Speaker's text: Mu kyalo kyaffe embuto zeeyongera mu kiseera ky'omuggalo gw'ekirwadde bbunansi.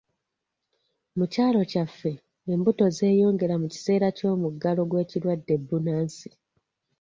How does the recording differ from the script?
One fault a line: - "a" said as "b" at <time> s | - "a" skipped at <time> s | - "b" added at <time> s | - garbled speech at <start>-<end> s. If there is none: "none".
none